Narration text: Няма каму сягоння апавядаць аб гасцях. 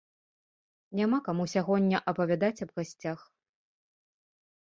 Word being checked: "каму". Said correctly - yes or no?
yes